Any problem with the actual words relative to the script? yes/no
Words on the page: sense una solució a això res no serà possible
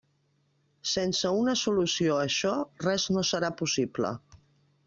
no